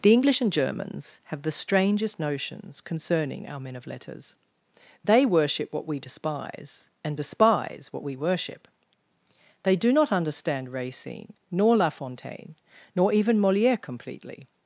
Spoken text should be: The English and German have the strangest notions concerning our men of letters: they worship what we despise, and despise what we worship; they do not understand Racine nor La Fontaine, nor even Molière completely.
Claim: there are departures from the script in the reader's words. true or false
true